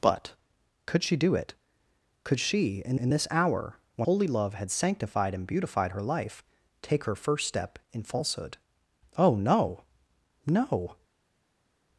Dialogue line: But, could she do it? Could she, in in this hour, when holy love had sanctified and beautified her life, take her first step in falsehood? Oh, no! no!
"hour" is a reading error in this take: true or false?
false